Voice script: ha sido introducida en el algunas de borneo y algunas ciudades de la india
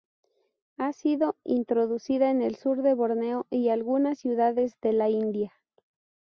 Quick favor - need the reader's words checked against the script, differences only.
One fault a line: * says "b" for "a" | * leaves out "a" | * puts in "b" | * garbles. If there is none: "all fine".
* says "sur" for "algunas"